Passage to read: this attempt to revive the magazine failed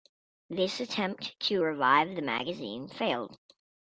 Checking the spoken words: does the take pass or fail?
pass